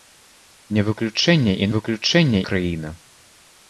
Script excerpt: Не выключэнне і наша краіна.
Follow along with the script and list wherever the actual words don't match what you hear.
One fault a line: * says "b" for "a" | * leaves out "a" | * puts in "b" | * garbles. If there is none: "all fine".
* says "выключэнне" for "наша"